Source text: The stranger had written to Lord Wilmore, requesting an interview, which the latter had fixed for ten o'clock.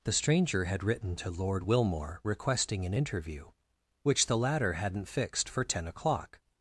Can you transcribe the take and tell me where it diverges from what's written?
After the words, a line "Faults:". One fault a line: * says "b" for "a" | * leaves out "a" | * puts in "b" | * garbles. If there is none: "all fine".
The stranger had written to Lord Wilmore, requesting an interview, which the latter hadn't fixed for ten o'clock.
Faults:
* says "hadn't" for "had"